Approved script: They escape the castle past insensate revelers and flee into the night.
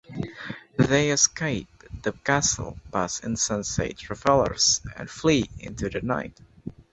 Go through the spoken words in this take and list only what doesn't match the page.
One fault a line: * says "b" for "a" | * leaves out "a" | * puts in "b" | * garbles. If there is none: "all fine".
all fine